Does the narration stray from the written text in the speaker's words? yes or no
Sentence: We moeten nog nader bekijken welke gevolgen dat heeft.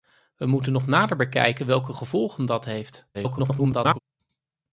yes